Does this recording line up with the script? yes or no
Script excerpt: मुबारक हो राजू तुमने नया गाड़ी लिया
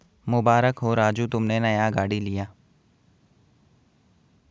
yes